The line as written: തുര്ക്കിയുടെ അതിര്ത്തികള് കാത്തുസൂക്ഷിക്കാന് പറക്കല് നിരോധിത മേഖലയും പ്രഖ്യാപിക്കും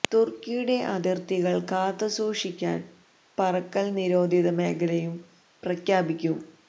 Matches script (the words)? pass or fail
pass